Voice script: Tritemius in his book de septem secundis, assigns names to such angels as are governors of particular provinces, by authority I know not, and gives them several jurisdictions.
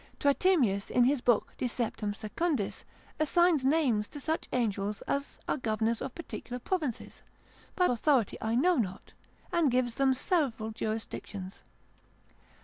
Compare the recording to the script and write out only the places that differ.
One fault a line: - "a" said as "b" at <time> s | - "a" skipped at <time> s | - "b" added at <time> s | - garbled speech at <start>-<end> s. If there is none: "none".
none